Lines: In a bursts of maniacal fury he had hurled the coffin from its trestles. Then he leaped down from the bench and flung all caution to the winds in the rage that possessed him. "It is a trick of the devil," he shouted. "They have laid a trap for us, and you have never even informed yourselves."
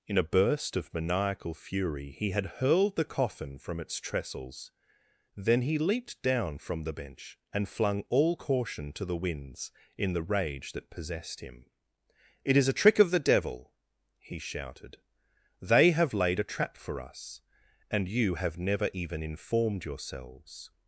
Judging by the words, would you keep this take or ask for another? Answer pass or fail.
fail